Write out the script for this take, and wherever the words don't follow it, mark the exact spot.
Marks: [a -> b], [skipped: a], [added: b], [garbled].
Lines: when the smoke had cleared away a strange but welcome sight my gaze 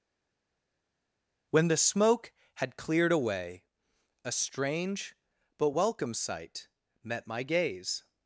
when the smoke had cleared away a strange but welcome sight [added: met] my gaze